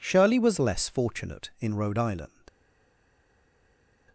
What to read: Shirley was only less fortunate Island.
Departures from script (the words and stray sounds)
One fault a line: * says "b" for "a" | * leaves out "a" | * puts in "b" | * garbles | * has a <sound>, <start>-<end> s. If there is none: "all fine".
* leaves out "only"
* puts in "in Rhode"